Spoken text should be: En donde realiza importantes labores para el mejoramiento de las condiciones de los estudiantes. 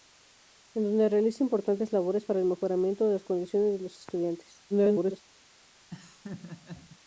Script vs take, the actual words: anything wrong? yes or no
yes